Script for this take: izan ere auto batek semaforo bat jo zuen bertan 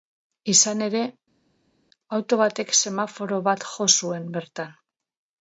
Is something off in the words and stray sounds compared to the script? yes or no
no